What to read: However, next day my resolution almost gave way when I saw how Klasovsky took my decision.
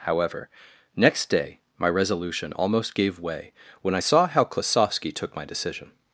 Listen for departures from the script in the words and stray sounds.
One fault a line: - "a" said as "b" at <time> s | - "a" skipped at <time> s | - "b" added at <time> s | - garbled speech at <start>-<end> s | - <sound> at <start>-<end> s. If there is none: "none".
none